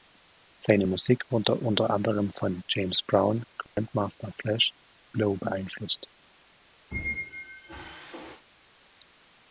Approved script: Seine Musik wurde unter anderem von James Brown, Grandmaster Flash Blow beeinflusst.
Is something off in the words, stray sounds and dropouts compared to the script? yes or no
yes